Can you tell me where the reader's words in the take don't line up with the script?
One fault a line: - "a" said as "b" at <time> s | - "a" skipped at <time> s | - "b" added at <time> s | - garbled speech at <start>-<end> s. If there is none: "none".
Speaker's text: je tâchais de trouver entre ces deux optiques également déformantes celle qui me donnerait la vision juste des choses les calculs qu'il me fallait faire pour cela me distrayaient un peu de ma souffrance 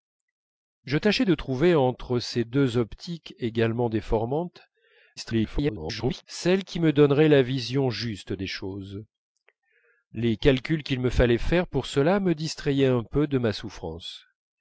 - garbled speech at 5.2-6.2 s